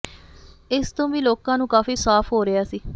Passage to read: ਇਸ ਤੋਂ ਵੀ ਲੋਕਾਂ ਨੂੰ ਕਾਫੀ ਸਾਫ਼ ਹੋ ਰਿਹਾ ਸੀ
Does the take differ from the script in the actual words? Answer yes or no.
no